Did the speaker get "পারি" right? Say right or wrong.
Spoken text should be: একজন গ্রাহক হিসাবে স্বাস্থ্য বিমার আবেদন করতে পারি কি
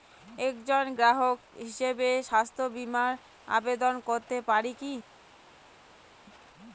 right